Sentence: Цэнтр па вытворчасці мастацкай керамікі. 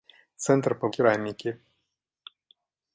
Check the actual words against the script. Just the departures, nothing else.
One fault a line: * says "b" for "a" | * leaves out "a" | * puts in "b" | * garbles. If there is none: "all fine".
* leaves out "вытворчасці мастацкай"